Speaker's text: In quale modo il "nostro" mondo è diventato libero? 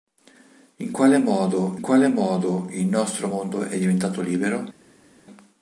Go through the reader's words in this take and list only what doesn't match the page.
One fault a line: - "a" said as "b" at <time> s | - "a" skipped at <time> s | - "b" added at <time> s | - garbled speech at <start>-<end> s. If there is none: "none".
- "quale modo" added at 1.8 s